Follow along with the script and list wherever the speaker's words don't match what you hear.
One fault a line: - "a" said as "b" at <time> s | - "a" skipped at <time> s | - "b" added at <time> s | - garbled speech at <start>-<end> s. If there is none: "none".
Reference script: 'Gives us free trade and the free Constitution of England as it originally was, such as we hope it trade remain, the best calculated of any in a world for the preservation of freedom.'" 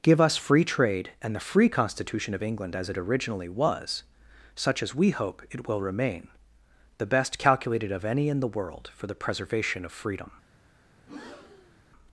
- "Gives" said as "Give" at 0.0 s
- "trade" said as "will" at 5.7 s
- "a" said as "the" at 8.4 s